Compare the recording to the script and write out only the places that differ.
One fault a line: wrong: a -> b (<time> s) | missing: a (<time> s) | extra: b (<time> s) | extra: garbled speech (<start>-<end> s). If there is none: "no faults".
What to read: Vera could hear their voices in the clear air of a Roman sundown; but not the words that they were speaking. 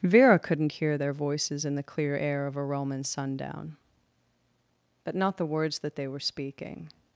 wrong: could -> couldn't (0.4 s)